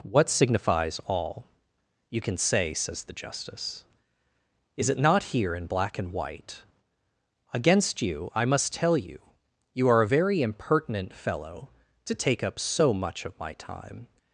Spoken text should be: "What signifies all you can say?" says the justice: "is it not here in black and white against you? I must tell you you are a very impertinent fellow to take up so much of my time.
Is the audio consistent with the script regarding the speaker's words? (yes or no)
yes